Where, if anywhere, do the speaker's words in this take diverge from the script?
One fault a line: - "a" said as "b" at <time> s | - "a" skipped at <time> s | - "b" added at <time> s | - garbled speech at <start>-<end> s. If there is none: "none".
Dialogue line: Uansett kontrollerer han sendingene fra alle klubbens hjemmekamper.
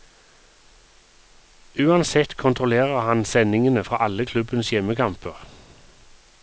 none